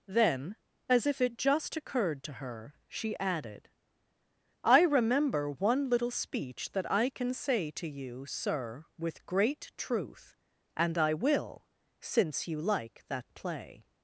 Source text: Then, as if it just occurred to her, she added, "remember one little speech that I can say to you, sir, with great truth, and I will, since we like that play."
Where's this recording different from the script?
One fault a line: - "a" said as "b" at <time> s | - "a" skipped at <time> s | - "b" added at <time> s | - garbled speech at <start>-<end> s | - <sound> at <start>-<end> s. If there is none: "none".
- "I" added at 4.6 s
- "we" said as "you" at 12.5 s